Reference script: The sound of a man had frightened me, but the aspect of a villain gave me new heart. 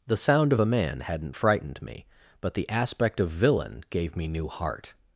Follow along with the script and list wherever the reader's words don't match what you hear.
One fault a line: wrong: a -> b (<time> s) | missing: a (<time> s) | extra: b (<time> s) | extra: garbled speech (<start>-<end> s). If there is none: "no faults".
wrong: had -> hadn't (1.0 s)
missing: a (3.3 s)